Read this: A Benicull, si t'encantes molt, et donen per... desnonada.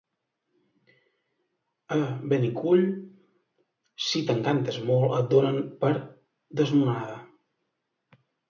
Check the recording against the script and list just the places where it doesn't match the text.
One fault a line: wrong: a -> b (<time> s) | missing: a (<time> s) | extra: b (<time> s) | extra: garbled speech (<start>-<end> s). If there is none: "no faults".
no faults